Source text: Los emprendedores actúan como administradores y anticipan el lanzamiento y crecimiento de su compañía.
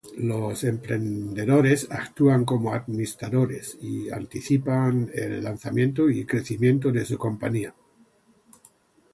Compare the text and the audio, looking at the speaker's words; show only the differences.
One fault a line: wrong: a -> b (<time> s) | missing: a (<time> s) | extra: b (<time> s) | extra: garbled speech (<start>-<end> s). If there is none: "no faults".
no faults